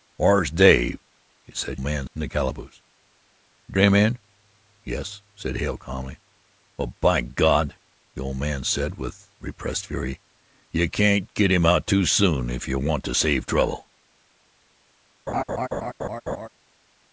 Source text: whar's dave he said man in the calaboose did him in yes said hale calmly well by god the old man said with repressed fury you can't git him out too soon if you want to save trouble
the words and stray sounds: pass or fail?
fail